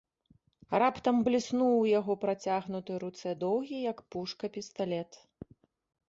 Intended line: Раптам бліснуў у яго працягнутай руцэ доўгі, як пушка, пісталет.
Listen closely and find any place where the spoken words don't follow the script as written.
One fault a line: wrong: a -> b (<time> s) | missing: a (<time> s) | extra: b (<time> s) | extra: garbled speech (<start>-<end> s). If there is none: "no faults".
no faults